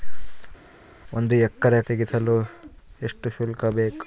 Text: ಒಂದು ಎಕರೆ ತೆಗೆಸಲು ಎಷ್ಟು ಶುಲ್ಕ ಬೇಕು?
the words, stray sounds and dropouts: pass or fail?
pass